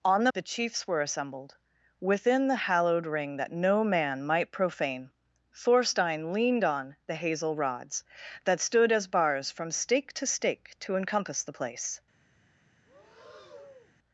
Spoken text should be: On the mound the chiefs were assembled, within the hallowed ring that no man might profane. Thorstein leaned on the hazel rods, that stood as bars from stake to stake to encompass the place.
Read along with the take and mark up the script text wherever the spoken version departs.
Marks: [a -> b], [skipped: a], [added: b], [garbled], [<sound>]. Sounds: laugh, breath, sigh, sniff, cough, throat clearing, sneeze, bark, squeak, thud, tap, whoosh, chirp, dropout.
On the [skipped: mound] the chiefs were assembled, within the hallowed ring that no man might profane. Thorstein leaned on the hazel rods, that stood as bars from stake to stake to encompass the place. [breath]